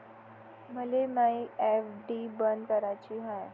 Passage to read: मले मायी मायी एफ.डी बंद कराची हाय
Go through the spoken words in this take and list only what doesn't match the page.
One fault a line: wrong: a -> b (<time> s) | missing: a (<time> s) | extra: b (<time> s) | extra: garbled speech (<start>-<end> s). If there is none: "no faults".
missing: मायी (1.4 s)